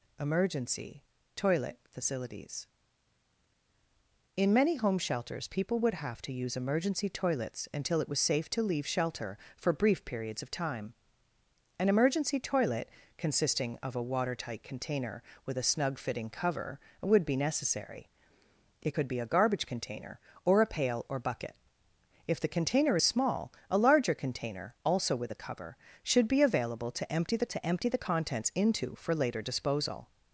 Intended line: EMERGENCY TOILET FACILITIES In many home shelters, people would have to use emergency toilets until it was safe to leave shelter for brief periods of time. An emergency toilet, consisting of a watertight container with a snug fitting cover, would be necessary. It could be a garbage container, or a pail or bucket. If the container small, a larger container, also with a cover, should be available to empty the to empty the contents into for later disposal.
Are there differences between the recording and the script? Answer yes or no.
no